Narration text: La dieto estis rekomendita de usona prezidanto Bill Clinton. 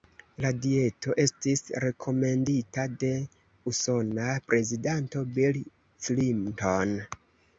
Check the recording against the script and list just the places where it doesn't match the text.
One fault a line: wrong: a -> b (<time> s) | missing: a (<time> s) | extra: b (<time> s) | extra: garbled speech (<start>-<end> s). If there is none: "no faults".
no faults